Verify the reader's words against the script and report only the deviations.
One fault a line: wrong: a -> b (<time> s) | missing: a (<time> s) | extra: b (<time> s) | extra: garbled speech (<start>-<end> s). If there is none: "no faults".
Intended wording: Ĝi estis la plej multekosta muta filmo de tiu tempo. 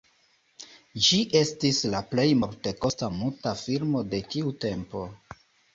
no faults